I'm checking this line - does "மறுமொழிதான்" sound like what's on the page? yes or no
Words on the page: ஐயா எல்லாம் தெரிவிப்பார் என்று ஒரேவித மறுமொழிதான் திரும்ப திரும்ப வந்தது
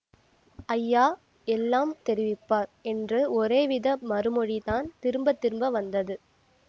yes